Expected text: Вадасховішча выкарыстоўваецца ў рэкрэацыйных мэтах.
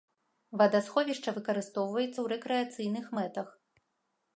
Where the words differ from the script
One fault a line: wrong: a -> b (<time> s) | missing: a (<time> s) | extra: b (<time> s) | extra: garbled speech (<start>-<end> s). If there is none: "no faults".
no faults